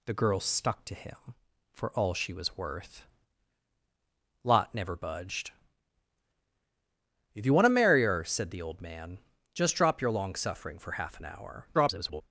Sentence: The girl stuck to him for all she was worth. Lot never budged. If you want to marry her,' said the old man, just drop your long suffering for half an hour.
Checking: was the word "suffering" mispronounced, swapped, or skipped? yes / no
no